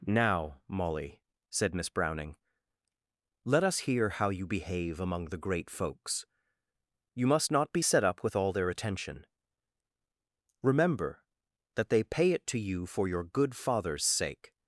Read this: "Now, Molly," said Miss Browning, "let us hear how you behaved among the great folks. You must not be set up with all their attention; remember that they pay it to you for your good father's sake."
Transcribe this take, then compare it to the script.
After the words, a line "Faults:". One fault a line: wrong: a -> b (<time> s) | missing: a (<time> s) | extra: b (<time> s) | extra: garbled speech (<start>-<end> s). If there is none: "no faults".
"Now, Molly," said Miss Browning, "let us hear how you behave among the great folks. You must not be set up with all their attention; remember that they pay it to you for your good father's sake."
Faults:
wrong: behaved -> behave (4.5 s)